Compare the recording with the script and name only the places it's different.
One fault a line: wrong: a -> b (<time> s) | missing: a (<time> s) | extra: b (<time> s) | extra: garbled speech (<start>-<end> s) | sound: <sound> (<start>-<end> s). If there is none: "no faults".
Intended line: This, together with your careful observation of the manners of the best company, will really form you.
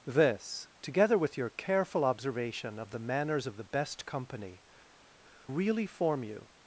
missing: will (4.6 s)